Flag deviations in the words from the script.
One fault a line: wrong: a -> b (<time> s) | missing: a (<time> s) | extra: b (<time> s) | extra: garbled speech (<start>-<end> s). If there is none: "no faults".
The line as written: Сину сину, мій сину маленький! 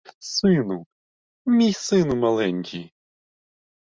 missing: сину (0.8 s)